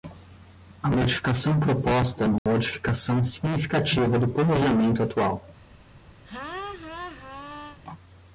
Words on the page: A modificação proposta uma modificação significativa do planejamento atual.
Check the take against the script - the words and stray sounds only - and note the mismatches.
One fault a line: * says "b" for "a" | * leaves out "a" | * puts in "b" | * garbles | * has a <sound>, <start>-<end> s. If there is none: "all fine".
* has a dropout, 2.4-2.5 s
* has a laugh, 6.2-7.8 s